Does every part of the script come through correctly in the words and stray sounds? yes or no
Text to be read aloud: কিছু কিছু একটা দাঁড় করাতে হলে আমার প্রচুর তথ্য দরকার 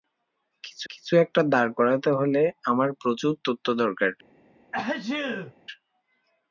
no